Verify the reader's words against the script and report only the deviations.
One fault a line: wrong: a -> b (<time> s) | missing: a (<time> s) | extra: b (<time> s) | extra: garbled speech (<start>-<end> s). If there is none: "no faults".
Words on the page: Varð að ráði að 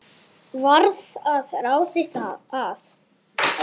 no faults